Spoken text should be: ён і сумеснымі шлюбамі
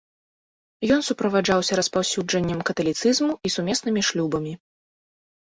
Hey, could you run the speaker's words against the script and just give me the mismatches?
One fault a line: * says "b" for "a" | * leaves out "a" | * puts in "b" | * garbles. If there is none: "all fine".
* puts in "суправаджаўся распаўсюджаннем каталіцызму"